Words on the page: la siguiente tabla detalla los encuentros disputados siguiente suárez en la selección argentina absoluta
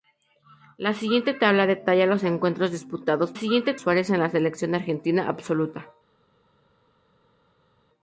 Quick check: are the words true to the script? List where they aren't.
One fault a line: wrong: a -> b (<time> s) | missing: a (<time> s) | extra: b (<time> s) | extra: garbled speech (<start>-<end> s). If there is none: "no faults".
no faults